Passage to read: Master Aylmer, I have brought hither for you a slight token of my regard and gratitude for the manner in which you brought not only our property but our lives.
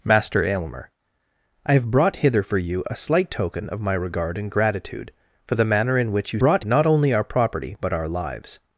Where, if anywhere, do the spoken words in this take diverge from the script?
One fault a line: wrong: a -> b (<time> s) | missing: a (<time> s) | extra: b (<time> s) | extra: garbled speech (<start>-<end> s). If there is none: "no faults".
no faults